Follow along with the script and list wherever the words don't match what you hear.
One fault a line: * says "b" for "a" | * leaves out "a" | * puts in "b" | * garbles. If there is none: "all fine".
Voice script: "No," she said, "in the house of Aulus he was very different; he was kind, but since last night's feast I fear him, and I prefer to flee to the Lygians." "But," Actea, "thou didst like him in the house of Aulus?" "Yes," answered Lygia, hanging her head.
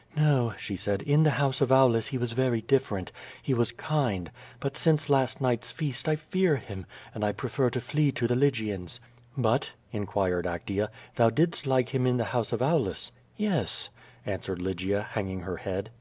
* puts in "inquired"